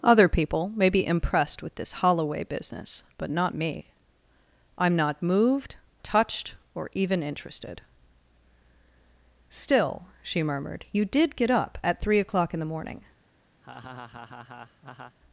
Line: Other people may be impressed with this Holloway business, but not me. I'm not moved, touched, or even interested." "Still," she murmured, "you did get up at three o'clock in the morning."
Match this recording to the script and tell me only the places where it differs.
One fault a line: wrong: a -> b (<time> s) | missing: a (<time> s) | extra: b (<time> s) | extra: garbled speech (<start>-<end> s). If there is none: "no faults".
no faults